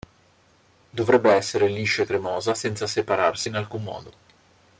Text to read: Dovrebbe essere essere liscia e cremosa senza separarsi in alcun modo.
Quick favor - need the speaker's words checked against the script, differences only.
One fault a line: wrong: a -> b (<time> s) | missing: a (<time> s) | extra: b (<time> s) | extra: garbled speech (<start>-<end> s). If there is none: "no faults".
missing: essere (1.7 s)